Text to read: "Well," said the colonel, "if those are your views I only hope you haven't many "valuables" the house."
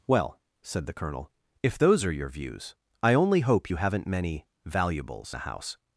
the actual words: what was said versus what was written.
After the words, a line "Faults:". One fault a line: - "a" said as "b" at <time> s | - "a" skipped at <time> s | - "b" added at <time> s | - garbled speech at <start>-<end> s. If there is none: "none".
"Well," said the colonel, "if those are your views I only hope you haven't many "valuables" the house."
Faults:
none